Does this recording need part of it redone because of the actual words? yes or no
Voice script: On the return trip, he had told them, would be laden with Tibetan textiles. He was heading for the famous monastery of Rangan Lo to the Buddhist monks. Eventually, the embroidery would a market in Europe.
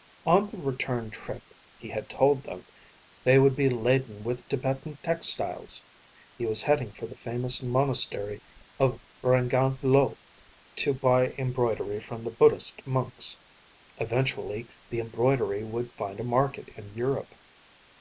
yes